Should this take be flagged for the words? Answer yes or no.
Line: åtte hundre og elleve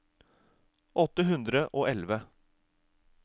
no